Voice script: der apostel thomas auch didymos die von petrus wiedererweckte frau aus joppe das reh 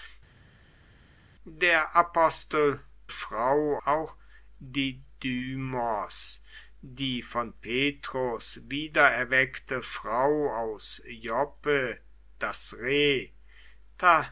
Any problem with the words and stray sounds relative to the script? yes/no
yes